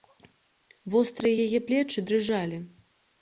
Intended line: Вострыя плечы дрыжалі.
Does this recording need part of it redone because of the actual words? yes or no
yes